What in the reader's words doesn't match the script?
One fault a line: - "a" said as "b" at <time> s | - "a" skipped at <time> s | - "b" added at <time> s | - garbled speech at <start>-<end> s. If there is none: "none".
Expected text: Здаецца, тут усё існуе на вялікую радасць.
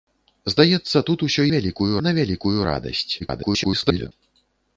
- "існуе" said as "вялікую" at 1.6 s
- garbled speech at 3.2-4.1 s